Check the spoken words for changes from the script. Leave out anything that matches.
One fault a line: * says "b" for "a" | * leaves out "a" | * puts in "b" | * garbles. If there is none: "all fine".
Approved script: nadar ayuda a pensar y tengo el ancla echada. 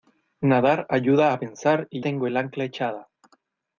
all fine